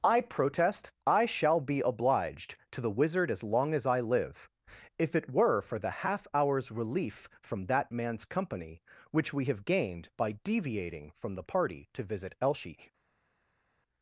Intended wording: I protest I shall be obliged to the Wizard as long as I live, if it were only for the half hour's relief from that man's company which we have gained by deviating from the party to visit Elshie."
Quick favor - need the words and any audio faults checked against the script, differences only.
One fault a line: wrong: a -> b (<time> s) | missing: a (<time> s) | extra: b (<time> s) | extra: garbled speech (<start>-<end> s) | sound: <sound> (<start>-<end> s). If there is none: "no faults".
missing: only (5.6 s)